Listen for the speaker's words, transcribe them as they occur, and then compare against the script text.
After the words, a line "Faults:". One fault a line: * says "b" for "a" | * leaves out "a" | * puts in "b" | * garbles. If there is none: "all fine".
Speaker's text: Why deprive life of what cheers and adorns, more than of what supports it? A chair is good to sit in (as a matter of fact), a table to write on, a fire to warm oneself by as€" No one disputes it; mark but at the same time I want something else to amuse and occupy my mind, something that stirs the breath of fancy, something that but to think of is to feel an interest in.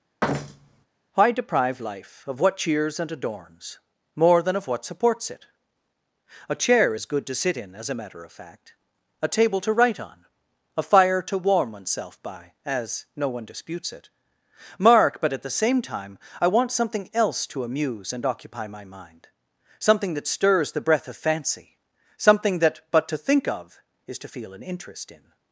Why deprive life of what cheers and adorns, more than of what supports it? A chair is good to sit in (as a matter of fact), a table to write on, a fire to warm oneself by as€" No one disputes it; mark but at the same time I want something else to amuse and occupy my mind, something that stirs the breath of fancy, something that but to think of is to feel an interest in.
Faults:
all fine